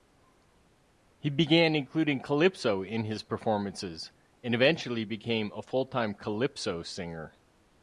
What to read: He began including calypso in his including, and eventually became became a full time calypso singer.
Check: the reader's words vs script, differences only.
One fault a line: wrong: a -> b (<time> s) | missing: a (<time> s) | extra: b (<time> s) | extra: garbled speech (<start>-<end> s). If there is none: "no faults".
wrong: including -> performances (3.2 s)
missing: became (5.5 s)